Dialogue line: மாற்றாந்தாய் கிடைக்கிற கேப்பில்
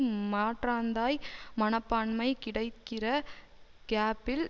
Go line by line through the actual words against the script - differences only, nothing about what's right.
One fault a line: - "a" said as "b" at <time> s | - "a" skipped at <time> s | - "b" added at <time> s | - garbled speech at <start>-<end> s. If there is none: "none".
- "மனப்பான்மை" added at 1.5 s